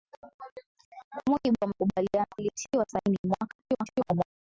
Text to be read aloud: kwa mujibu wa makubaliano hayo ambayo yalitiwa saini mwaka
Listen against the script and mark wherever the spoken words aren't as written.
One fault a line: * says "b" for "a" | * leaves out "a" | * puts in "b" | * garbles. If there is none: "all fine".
* leaves out "hayo ambayo"
* garbles